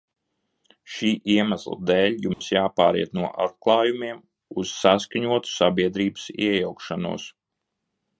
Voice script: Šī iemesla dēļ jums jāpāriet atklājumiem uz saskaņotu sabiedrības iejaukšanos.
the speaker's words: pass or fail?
fail